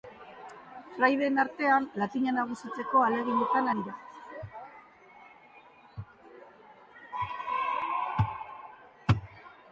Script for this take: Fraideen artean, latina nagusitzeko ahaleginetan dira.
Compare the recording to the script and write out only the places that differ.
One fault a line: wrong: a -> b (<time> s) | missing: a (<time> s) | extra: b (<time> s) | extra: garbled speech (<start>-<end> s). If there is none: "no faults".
no faults